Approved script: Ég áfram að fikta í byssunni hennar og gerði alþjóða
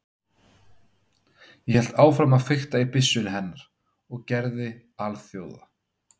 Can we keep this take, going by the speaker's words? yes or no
no